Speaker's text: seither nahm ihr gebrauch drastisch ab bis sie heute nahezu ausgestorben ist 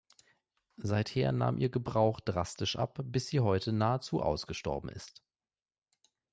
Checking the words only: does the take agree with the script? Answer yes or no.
yes